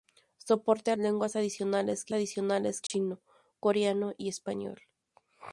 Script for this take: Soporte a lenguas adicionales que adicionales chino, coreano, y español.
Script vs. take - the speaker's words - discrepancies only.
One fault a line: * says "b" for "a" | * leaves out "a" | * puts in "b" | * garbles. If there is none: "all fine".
all fine